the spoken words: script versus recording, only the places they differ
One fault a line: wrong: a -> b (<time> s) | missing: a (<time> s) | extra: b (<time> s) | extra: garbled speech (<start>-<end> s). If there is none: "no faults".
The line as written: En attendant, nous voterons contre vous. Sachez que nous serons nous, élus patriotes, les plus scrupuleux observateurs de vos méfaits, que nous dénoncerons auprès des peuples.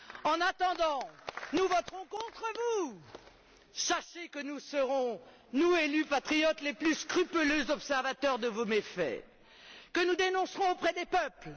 no faults